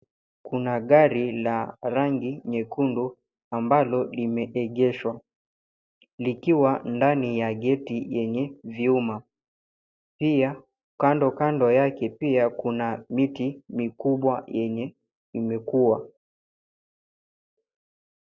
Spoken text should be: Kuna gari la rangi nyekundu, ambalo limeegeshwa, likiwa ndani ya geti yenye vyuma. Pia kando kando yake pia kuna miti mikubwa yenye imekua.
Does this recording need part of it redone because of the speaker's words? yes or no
no